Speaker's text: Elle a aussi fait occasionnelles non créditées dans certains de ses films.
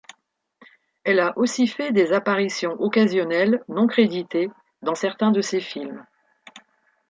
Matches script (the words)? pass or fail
fail